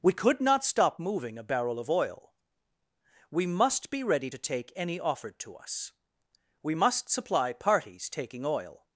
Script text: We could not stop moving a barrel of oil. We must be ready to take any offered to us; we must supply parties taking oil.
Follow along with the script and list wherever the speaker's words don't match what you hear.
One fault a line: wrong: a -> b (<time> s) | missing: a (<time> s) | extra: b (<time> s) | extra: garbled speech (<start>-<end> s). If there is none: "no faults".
no faults